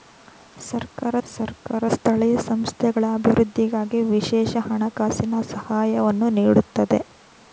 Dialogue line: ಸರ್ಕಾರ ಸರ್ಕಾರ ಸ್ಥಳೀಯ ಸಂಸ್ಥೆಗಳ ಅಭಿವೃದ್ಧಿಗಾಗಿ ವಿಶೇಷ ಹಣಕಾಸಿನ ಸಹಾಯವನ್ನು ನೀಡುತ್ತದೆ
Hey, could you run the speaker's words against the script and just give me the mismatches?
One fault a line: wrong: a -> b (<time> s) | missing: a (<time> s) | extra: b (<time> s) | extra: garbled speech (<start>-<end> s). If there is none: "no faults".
no faults